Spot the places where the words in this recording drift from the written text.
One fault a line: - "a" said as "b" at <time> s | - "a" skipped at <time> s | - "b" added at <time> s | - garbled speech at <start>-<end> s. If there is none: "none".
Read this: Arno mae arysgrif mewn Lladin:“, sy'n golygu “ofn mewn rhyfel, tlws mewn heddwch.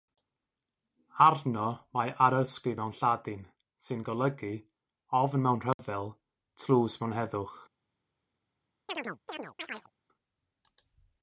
none